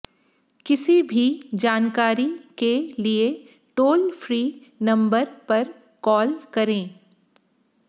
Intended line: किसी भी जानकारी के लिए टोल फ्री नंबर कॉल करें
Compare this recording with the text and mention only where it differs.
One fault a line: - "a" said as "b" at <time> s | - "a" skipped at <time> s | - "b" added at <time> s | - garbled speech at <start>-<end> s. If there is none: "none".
- "पर" added at 5.5 s